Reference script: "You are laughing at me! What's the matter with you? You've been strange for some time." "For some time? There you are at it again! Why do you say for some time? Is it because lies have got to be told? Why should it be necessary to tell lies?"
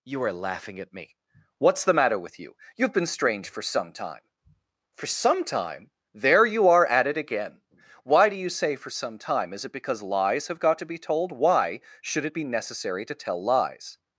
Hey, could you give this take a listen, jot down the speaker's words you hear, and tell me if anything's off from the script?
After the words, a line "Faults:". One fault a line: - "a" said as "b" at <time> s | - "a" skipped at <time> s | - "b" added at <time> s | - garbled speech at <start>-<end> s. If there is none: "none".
"You are laughing at me! What's the matter with you? You've been strange for some time." "For some time? There you are at it again! Why do you say for some time? Is it because lies have got to be told? Why should it be necessary to tell lies?"
Faults:
none